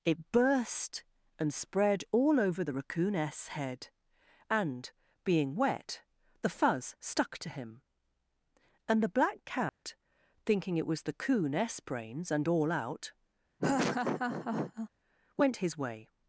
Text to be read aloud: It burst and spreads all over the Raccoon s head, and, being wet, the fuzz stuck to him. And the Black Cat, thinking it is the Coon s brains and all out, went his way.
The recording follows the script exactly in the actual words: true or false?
false